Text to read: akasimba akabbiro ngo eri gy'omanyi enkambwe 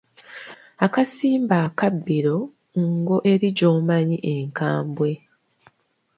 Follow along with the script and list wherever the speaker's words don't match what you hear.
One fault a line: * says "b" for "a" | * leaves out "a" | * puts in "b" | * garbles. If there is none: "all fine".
all fine